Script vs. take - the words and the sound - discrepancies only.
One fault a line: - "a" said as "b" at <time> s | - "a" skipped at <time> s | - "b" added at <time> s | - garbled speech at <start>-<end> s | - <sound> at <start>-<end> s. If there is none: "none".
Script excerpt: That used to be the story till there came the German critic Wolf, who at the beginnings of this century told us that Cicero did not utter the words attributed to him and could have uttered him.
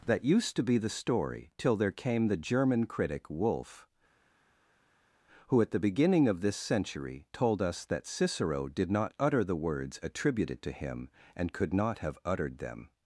- "beginnings" said as "beginning" at 5.8 s
- "not" added at 11.7 s
- "him" said as "them" at 12.6 s